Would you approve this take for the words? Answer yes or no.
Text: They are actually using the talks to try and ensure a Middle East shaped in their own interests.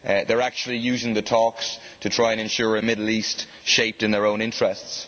yes